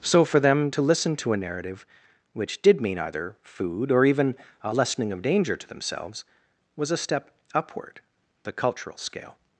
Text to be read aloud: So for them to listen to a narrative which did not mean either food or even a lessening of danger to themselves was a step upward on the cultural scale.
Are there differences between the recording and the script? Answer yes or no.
yes